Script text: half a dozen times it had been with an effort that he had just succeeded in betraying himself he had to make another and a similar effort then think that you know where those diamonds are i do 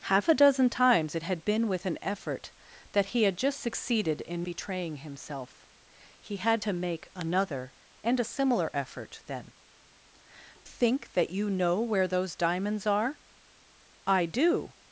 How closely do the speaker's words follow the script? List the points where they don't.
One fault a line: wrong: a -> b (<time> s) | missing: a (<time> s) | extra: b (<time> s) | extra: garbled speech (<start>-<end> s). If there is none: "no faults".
no faults